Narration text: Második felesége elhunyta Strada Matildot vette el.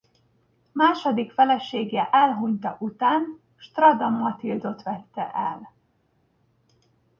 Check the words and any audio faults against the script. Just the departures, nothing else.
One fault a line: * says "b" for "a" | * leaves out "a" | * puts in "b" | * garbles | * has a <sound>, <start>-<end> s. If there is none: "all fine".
* puts in "után"